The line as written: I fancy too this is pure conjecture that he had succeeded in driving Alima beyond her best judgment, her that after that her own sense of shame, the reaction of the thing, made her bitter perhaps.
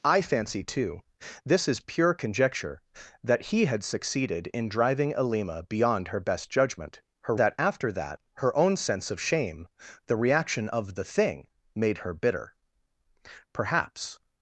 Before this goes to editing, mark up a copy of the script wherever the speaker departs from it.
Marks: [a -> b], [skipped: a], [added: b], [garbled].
I fancy too this is pure conjecture that he had succeeded in driving Alima beyond her best judgment, her that after that her own sense of shame, the reaction of the thing, made her bitter perhaps.